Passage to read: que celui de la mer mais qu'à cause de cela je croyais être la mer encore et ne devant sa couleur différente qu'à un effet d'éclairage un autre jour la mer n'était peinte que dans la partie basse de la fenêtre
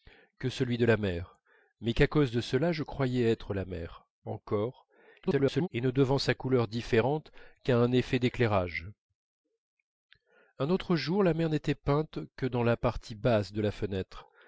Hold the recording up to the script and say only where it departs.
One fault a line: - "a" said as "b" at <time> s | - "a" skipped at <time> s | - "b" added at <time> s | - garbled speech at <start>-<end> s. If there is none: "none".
- garbled speech at 5.2-5.7 s